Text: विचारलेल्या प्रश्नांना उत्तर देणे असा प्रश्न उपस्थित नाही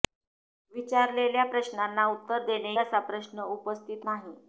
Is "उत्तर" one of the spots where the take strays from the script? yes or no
no